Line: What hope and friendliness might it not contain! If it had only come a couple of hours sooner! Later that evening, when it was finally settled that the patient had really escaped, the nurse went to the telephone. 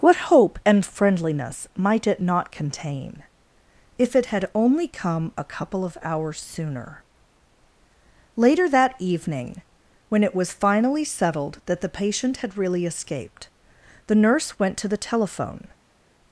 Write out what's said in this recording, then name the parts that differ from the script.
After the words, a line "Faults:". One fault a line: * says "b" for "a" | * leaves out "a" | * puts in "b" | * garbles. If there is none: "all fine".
What hope and friendliness might it not contain! If it had only come a couple of hours sooner! Later that evening, when it was finally settled that the patient had really escaped, the nurse went to the telephone.
Faults:
all fine